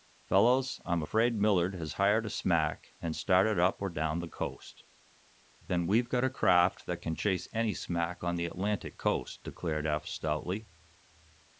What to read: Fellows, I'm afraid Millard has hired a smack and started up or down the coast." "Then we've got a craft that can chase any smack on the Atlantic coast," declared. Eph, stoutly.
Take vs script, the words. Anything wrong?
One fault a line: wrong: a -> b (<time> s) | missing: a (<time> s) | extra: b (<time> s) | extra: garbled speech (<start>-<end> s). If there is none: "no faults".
no faults